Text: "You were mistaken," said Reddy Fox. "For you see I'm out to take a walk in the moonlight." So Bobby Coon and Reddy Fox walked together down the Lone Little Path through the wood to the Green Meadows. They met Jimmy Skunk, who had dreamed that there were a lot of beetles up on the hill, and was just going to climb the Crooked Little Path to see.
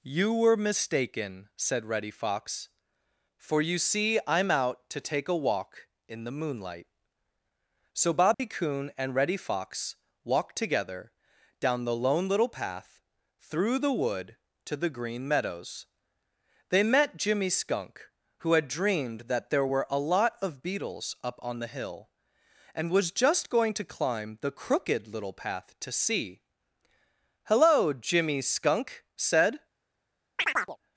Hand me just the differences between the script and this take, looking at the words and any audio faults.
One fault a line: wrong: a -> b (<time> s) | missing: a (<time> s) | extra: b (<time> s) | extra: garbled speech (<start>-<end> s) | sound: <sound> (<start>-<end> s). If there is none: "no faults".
sound: dropout (8.3-8.4 s)
extra: Hello Jimmy Skunk said (27.4 s)
sound: chirp (30.4-30.8 s)